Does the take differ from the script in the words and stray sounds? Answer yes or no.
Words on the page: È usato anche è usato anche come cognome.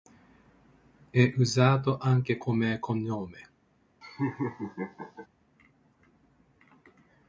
yes